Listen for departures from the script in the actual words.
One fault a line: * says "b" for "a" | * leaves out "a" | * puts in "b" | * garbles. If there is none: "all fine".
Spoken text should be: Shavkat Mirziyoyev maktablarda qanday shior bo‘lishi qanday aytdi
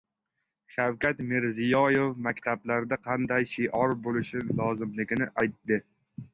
* says "lozimligini" for "qanday"